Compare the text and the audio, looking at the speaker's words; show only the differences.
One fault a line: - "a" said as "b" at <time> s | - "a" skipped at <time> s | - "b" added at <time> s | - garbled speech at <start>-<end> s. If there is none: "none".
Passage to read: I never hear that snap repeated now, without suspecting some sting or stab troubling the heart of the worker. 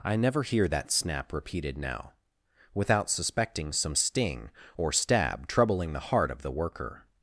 none